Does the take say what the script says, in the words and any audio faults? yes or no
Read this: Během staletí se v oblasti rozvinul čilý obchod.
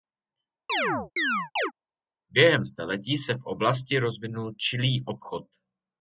no